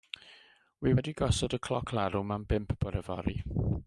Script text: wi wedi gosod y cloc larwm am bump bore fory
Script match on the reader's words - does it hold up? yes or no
yes